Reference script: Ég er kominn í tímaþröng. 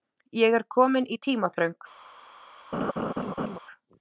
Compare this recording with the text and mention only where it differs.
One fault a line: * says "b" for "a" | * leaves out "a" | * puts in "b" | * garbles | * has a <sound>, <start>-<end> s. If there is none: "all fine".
* has a laugh, 2.7-3.6 s